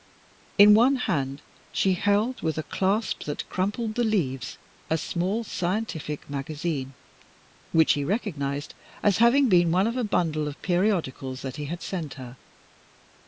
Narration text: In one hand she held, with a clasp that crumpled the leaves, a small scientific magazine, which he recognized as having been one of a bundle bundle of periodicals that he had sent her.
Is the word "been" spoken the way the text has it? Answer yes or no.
yes